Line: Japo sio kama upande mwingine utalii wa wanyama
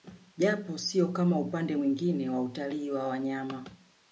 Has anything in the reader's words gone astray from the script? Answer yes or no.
yes